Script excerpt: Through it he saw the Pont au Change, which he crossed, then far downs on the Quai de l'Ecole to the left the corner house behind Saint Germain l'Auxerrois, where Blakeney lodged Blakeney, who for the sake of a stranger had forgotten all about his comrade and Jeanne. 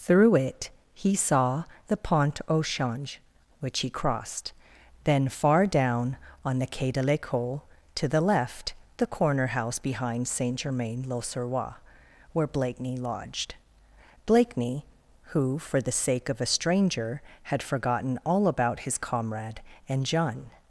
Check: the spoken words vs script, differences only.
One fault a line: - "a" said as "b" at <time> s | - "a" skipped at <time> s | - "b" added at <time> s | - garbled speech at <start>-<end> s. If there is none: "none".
- "downs" said as "down" at 5.7 s